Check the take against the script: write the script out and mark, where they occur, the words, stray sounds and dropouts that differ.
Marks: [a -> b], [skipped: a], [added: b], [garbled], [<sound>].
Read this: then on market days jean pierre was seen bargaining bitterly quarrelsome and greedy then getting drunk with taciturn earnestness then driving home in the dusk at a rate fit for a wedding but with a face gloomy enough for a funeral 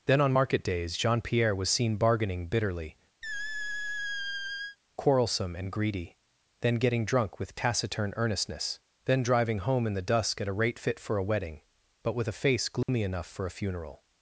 then on market days jean pierre was seen bargaining bitterly [squeak] quarrelsome and greedy then getting drunk with taciturn earnestness then driving home in the dusk at a rate fit for a wedding but with a face gloomy [dropout] enough for a funeral